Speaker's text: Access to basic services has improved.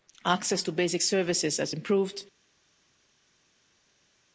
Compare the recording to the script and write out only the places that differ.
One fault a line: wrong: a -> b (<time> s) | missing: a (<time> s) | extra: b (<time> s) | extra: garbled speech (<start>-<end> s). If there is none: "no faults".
no faults